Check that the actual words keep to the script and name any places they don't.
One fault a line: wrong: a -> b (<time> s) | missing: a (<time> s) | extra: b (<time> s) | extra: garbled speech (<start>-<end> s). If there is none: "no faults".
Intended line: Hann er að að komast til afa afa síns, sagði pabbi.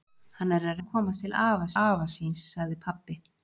no faults